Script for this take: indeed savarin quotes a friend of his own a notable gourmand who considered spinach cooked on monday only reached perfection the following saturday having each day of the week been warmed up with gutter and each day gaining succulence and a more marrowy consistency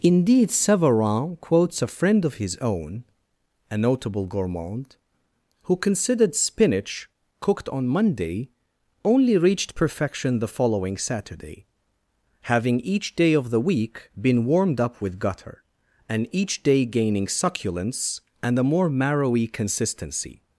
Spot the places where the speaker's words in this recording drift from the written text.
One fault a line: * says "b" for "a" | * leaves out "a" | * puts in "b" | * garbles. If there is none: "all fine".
all fine